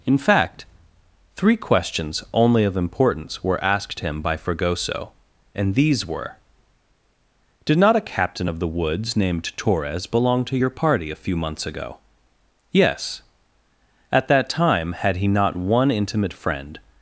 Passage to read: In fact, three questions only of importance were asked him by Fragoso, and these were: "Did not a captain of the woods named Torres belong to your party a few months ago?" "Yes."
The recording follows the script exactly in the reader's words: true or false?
false